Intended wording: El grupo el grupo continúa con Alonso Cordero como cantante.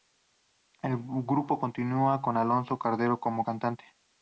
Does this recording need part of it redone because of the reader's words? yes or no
yes